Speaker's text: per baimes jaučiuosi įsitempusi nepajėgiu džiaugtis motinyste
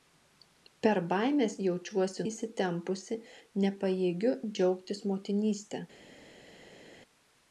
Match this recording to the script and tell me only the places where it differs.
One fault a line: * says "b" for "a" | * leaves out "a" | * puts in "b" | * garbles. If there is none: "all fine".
all fine